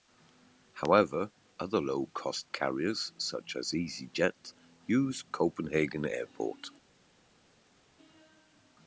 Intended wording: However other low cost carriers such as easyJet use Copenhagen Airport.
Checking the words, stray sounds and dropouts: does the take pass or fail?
pass